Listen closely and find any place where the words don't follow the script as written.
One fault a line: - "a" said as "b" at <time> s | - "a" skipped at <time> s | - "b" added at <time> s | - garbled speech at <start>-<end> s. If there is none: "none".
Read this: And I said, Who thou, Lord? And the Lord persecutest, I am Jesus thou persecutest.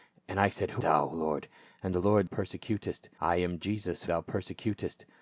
none